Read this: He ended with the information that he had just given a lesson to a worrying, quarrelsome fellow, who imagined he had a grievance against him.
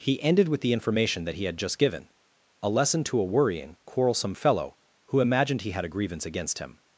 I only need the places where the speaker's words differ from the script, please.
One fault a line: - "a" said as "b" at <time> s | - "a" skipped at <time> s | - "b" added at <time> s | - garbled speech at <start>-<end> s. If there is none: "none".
none